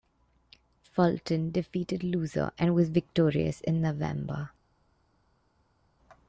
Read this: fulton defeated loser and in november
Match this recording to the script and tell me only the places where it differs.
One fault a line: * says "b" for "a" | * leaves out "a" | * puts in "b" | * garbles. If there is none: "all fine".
* puts in "was victorious"